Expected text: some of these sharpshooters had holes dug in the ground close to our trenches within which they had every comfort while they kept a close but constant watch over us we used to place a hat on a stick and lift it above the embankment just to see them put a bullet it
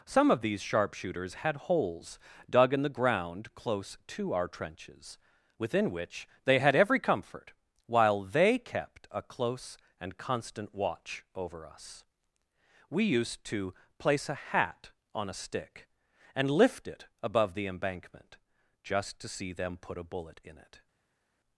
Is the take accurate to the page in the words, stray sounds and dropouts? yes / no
no